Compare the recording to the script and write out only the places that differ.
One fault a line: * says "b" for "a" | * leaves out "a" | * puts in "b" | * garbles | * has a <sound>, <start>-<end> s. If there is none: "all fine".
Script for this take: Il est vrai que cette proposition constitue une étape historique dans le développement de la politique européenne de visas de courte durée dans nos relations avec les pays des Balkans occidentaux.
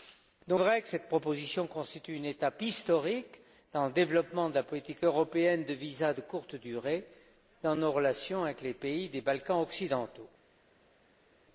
* leaves out "est"